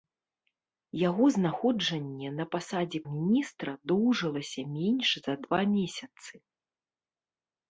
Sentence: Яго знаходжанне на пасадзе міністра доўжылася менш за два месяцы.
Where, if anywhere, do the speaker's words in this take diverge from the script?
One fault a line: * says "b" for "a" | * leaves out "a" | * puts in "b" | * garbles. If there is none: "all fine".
all fine